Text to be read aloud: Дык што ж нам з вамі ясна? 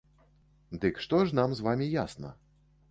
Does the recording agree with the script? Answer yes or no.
yes